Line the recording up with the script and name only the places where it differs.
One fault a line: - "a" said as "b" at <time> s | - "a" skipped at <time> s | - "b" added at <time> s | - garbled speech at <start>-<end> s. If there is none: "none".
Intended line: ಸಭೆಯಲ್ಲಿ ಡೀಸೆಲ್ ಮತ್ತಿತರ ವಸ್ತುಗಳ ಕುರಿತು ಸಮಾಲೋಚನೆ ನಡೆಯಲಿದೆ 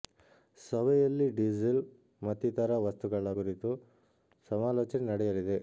none